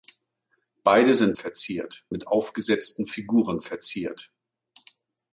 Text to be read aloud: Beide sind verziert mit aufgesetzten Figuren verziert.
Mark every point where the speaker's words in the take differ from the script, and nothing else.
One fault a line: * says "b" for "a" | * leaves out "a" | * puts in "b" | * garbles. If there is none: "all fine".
all fine